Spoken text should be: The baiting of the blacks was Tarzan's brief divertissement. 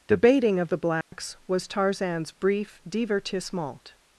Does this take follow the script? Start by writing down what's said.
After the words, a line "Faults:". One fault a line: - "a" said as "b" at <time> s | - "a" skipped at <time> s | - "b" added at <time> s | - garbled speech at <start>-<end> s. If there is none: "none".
The baiting of the blacks was Tarzan's brief divertissement.
Faults:
none